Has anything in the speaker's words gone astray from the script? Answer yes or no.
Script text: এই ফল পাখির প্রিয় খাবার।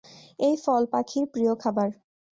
no